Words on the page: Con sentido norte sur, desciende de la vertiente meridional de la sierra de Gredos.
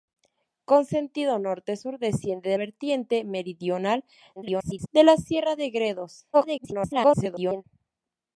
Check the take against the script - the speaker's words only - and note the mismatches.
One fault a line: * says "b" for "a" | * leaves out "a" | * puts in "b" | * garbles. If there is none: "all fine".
* leaves out "la"
* garbles
* garbles